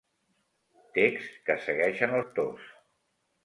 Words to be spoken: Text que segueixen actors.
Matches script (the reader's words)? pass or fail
pass